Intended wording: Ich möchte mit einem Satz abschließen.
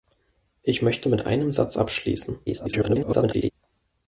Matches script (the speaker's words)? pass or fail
fail